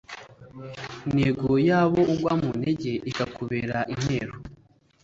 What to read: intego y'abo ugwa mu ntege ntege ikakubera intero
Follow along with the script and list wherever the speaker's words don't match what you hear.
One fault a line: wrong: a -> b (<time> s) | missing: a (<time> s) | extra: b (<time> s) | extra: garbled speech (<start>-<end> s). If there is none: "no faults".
missing: ntege (2.9 s)